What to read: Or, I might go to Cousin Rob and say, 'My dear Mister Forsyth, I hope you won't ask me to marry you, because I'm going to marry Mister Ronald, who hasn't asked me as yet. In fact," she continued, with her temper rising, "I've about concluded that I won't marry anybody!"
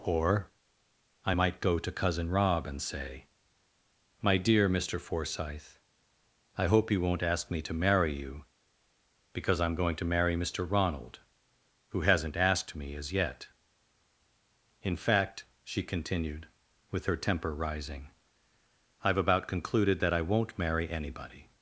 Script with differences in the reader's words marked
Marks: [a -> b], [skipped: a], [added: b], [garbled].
Or, I might go to Cousin Rob and say, 'My dear Mister Forsyth, I hope you won't ask me to marry you, because I'm going to marry Mister Ronald, who hasn't asked me as yet. In fact," she continued, with her temper rising, "I've about concluded that I won't marry anybody!"